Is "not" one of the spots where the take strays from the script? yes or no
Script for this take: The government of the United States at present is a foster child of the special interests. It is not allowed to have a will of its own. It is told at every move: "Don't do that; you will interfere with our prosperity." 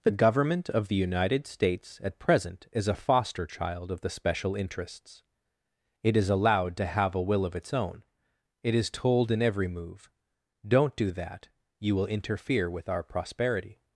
yes